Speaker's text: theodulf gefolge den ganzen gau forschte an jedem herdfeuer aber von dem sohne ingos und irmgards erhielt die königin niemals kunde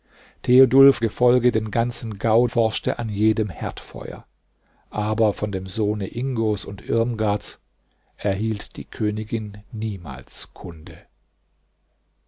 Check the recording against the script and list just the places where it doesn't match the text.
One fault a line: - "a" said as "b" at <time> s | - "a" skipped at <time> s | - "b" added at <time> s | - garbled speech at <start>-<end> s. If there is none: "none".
none